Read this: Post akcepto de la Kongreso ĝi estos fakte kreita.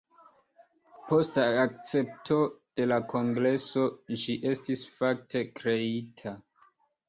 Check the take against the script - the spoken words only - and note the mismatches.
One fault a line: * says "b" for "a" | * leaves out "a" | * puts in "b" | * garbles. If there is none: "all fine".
* says "estis" for "estos"